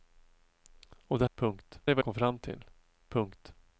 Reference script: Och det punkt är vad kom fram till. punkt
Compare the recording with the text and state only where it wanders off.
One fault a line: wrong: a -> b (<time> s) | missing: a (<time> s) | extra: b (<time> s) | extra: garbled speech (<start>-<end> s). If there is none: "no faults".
no faults